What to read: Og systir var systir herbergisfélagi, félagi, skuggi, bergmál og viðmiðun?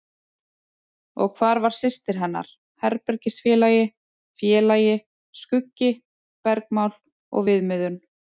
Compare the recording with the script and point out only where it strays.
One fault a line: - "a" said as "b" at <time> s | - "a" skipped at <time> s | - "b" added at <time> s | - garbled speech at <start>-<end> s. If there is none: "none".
- "systir" said as "hvar" at 1.4 s
- "hennar" added at 2.2 s